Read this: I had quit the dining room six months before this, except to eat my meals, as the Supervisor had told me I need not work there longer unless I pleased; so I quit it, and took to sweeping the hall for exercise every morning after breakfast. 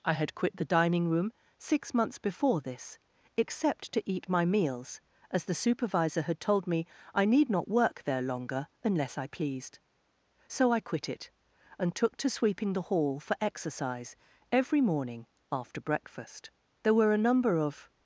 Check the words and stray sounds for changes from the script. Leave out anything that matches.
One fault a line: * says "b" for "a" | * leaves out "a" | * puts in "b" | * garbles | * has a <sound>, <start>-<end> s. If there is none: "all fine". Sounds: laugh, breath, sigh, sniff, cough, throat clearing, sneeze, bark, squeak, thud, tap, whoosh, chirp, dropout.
* puts in "There were a number of"